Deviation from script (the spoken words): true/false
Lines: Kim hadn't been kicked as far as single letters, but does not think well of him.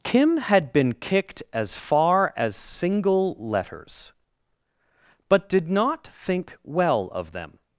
true